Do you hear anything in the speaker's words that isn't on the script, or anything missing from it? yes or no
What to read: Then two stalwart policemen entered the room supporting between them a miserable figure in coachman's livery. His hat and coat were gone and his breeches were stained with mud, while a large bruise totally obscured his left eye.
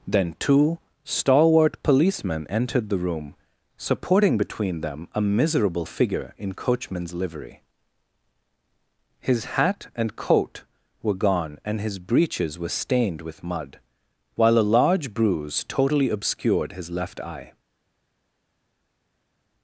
no